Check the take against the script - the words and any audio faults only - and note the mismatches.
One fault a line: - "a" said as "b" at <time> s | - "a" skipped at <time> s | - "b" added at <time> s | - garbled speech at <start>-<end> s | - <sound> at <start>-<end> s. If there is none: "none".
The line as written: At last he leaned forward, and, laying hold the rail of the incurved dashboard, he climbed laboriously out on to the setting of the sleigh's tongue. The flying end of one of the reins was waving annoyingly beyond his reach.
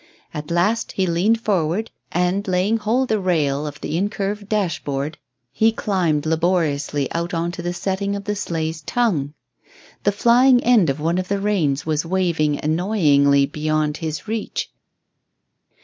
none